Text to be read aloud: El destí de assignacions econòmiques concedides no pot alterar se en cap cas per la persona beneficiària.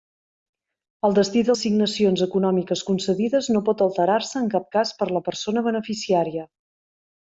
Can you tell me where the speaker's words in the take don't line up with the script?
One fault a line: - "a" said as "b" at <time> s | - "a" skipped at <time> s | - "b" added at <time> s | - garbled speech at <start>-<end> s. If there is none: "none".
none